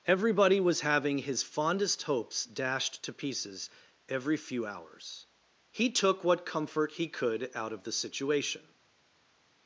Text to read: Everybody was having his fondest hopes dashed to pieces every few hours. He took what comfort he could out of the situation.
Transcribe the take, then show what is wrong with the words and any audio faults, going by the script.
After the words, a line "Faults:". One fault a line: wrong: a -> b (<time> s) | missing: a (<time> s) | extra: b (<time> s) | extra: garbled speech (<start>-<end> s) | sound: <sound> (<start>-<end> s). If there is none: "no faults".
Everybody was having his fondest hopes dashed to pieces every few hours. He took what comfort he could out of the situation.
Faults:
no faults